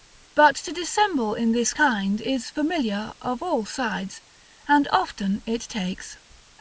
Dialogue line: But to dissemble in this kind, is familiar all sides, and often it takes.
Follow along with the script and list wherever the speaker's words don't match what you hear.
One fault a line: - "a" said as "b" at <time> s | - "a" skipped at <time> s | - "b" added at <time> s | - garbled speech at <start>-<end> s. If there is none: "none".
- "of" added at 3.2 s